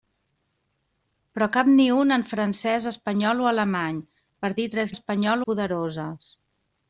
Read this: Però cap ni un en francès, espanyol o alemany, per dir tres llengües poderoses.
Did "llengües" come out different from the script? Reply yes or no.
yes